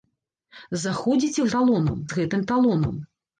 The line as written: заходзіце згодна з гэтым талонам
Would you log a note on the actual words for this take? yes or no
yes